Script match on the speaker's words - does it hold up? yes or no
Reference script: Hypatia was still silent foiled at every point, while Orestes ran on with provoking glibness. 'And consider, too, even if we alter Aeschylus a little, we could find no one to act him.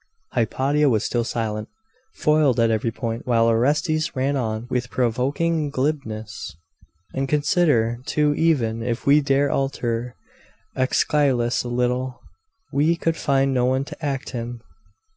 no